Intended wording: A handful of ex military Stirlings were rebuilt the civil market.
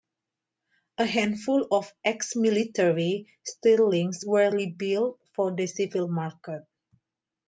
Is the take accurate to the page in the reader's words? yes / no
no